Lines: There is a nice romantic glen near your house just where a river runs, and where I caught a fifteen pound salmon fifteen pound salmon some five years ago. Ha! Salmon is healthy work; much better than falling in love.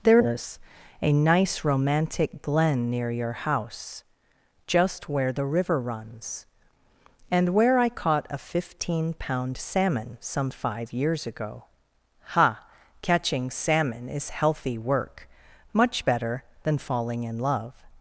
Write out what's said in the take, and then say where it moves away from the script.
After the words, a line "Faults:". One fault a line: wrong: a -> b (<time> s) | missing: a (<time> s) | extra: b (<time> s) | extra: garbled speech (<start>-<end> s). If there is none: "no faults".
There is a nice romantic glen near your house just where the river runs, and where I caught a fifteen pound salmon some five years ago. Ha! Catching salmon is healthy work; much better than falling in love.
Faults:
wrong: a -> the (5.3 s)
missing: fifteen pound salmon (10.2 s)
extra: Catching (13.0 s)